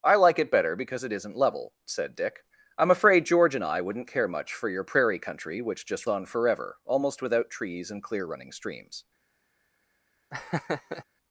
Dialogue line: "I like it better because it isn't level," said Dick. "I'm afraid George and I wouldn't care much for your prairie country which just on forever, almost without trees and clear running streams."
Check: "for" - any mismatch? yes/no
no